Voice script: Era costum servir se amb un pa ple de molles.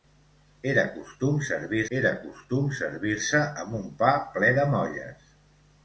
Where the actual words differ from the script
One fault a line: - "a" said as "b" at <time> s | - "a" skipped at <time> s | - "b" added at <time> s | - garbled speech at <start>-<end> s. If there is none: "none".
- "era costum servir" added at 2.0 s